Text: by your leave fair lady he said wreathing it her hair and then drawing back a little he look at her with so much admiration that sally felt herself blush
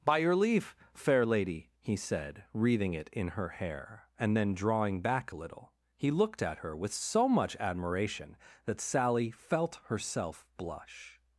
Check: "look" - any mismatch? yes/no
yes